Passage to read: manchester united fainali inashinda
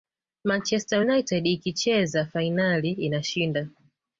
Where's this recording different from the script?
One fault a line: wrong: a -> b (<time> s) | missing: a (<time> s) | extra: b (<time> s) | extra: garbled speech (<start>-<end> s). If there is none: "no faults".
extra: ikicheza (1.5 s)